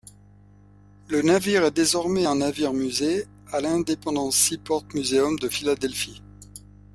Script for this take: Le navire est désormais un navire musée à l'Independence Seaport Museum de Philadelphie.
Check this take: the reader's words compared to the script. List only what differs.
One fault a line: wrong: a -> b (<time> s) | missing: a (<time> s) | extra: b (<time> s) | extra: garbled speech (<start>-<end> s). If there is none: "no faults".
no faults